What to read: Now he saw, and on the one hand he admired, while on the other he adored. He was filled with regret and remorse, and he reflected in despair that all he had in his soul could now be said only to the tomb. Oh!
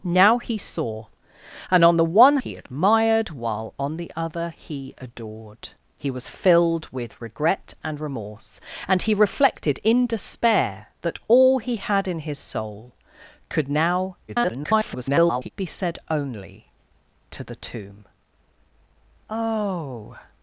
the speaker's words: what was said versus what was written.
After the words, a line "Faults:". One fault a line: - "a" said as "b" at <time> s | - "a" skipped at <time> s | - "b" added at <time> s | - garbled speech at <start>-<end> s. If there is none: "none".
Now he saw, and on the one he admired, while on the other he adored. He was filled with regret and remorse, and he reflected in despair that all he had in his soul could now [garbled] be said only to the tomb. Oh!
Faults:
- "hand" skipped at 2.4 s
- garbled speech at 14.3-15.5 s